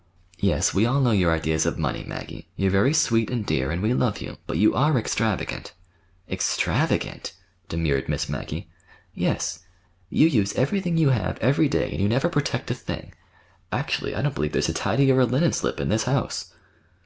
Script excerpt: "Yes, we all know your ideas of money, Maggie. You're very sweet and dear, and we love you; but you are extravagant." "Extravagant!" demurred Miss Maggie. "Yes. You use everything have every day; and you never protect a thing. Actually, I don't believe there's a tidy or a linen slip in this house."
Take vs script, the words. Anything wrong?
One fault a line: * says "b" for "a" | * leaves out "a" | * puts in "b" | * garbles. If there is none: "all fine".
* puts in "you"